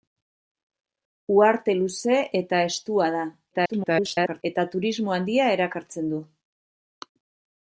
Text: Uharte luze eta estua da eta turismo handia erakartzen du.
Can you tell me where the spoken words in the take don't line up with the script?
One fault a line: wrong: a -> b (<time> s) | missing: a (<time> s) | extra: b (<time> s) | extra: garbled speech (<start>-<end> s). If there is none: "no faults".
extra: garbled speech (3.5-4.4 s)